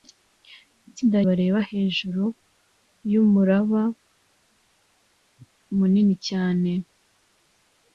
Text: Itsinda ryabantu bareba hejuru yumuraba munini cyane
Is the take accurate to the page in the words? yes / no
no